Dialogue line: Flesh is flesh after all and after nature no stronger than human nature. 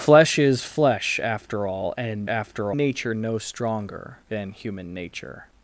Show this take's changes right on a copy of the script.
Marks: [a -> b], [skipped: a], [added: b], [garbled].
Flesh is flesh after all and after nature no stronger than human nature.